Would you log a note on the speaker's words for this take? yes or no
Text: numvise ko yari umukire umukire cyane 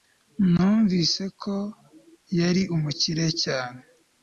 yes